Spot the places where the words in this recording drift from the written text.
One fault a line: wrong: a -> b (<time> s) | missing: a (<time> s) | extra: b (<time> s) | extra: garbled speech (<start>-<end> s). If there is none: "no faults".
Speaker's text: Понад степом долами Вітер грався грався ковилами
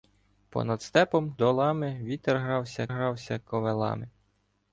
no faults